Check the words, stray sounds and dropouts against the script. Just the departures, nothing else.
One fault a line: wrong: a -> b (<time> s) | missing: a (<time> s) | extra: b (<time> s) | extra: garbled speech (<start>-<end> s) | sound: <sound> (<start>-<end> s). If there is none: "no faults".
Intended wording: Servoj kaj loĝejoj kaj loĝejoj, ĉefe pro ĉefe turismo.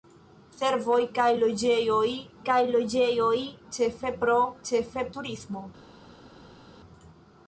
no faults